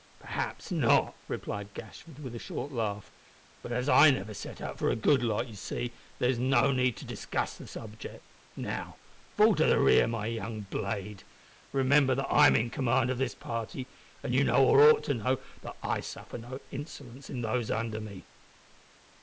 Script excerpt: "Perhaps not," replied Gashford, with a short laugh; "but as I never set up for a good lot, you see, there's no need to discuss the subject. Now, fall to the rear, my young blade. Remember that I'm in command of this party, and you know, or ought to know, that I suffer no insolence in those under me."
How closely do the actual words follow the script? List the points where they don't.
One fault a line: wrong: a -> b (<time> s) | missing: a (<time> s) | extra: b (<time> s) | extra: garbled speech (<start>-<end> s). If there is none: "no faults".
no faults